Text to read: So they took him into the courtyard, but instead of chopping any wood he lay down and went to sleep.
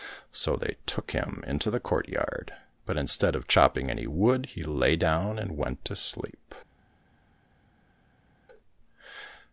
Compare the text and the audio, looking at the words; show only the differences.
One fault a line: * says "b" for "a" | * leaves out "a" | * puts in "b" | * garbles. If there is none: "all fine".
all fine